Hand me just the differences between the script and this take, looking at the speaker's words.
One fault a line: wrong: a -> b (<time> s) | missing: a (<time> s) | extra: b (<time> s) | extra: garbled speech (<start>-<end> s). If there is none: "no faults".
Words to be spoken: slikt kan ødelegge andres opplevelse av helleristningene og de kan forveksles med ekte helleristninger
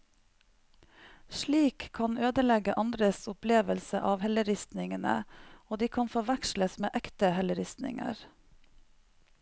no faults